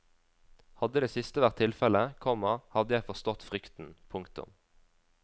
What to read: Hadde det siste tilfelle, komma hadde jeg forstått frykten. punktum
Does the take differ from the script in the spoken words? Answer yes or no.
yes